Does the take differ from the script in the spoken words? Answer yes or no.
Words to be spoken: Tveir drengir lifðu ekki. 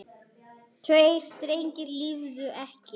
no